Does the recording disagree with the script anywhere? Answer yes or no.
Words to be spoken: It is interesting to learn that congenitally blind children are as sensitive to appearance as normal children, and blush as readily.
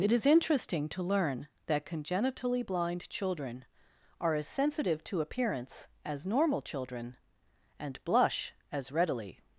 no